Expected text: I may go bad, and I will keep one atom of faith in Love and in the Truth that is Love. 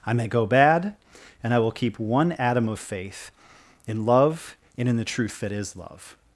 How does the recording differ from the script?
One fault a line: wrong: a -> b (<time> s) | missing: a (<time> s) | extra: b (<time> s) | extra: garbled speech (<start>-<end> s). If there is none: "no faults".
no faults